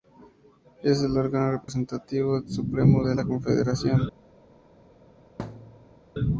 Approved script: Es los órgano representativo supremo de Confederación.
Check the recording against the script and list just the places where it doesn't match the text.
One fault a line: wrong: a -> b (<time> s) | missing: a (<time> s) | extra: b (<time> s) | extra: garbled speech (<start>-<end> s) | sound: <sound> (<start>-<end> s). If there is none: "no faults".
wrong: los -> el (1.0 s)
sound: dropout (1.6-1.7 s)
extra: la (3.1 s)
sound: thud (5.4-6.0 s)